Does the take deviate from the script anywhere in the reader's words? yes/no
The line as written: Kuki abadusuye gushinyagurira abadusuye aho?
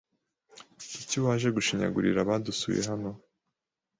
yes